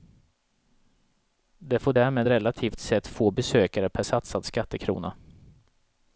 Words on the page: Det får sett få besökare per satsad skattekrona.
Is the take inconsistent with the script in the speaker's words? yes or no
yes